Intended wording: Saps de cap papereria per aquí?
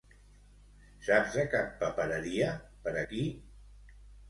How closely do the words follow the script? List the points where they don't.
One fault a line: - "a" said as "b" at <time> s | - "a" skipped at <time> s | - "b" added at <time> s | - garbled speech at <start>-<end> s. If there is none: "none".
none